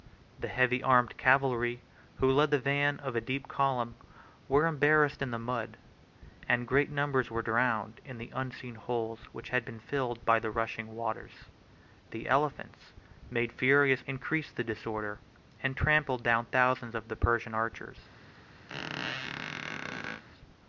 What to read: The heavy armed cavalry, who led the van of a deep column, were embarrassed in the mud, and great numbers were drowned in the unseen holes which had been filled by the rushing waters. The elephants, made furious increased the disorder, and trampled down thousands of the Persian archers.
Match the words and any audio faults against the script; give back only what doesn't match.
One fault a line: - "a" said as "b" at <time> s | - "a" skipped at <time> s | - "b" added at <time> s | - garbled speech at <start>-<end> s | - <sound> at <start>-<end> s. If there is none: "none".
- squeak at 18.7-20.2 s